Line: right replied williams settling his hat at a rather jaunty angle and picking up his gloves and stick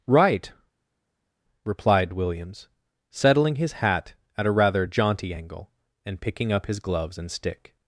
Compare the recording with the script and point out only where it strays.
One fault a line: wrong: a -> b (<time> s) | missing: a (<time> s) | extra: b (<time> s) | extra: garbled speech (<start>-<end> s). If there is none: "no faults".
no faults